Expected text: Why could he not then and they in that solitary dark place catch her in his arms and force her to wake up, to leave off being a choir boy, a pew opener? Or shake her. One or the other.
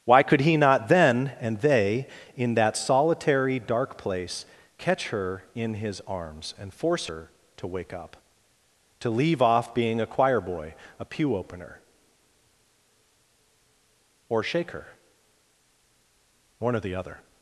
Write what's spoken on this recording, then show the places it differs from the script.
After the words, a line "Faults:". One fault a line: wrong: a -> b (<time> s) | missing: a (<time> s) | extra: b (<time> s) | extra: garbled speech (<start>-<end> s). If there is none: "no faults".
Why could he not then and they in that solitary dark place catch her in his arms and force her to wake up, to leave off being a choir boy, a pew opener? Or shake her. One or the other.
Faults:
no faults